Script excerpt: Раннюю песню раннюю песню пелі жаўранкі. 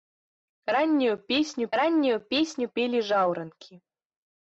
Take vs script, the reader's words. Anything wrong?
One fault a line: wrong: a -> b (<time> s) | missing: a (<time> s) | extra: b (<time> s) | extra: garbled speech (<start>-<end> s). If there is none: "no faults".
no faults